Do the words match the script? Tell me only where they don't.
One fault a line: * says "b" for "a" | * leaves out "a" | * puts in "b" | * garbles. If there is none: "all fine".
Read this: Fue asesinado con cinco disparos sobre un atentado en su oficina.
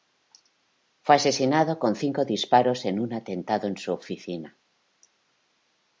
* says "en" for "sobre"